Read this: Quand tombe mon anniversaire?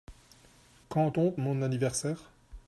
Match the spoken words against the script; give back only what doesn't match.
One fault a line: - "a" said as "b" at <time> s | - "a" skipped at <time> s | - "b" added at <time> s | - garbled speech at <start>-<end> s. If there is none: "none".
none